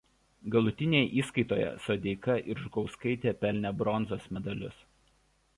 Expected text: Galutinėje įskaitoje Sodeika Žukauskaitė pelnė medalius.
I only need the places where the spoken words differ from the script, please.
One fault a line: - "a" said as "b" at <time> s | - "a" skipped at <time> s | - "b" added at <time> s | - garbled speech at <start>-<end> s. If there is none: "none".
- "ir" added at 2.5 s
- "bronzos" added at 3.8 s